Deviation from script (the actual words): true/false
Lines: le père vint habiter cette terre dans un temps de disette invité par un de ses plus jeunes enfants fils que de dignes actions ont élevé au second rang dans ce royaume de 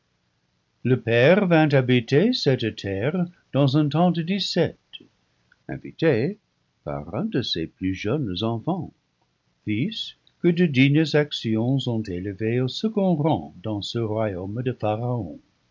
false